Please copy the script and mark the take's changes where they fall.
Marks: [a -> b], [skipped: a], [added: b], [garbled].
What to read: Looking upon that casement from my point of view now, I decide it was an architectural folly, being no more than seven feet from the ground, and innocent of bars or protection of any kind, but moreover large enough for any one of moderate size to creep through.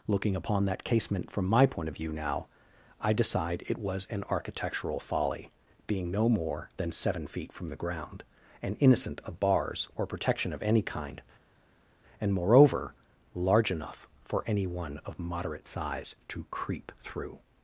Looking upon that casement from my point of view now, I decide it was an architectural folly, being no more than seven feet from the ground, and innocent of bars or protection of any kind, [but -> and] moreover large enough for any one of moderate size to creep through.